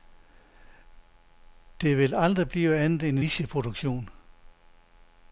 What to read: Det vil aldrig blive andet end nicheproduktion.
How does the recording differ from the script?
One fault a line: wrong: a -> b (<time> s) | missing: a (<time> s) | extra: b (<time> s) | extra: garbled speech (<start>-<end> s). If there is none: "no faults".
no faults